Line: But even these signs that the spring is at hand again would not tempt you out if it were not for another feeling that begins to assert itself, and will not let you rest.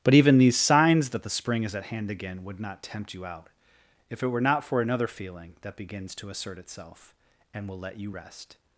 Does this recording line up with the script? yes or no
no